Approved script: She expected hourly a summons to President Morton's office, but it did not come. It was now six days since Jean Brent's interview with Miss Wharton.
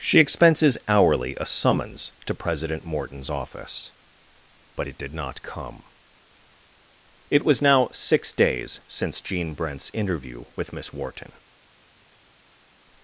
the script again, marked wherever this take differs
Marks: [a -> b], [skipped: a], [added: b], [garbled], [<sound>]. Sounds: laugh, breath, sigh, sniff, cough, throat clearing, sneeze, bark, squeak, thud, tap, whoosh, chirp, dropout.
She [expected -> expenses] hourly a summons to President Morton's office, but it did not come. It was now six days since Jean Brent's interview with Miss Wharton.